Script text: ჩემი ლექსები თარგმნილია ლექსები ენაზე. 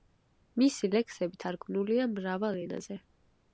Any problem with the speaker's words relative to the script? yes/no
yes